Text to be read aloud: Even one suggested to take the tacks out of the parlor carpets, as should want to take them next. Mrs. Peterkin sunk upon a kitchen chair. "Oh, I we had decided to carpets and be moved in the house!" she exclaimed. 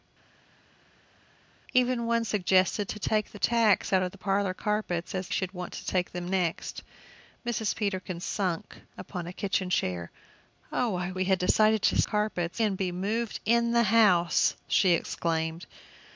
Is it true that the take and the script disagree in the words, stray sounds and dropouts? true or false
false